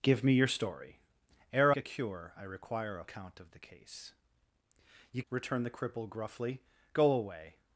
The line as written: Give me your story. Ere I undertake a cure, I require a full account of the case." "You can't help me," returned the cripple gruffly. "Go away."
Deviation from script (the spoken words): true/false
true